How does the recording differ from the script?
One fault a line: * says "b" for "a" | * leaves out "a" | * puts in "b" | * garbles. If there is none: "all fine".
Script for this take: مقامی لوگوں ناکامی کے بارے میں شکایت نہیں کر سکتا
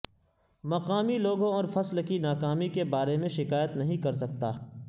* puts in "اور فصل کی"